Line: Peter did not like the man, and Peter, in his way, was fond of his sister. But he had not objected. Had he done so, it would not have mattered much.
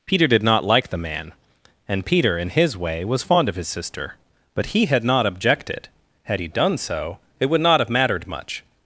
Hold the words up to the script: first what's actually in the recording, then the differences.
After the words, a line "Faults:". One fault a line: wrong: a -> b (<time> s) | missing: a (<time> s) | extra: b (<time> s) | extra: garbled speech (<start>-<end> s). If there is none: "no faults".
Peter did not like the man, and Peter, in his way, was fond of his sister. But he had not objected. Had he done so, it would not have mattered much.
Faults:
no faults